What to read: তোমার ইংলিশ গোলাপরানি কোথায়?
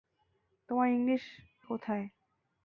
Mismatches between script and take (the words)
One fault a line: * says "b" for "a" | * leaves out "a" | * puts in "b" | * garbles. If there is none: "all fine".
* leaves out "গোলাপরানি"